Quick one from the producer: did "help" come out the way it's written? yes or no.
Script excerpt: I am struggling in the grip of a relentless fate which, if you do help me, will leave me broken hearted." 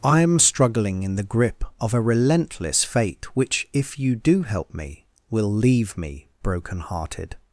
yes